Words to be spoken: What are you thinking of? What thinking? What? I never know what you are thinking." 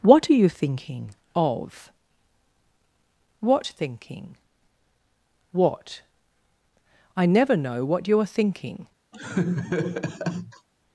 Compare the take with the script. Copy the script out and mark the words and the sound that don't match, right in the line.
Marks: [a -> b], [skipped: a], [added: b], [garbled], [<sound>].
What are you thinking of? What thinking? What? I never know what you are thinking." [laugh]